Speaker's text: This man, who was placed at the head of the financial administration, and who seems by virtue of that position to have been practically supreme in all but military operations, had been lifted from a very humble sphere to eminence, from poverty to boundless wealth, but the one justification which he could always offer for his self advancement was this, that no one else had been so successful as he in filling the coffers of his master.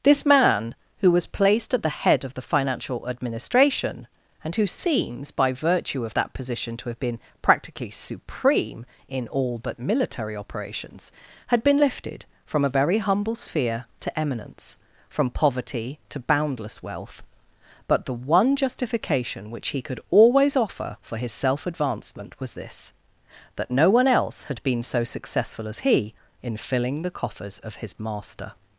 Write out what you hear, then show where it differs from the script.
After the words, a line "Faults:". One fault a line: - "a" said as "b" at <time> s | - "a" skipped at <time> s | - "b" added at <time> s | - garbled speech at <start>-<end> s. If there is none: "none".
This man, who was placed at the head of the financial administration, and who seems by virtue of that position to have been practically supreme in all but military operations, had been lifted from a very humble sphere to eminence, from poverty to boundless wealth, but the one justification which he could always offer for his self advancement was this, that no one else had been so successful as he in filling the coffers of his master.
Faults:
none